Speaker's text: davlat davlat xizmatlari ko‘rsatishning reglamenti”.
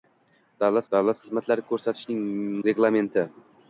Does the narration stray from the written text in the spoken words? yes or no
no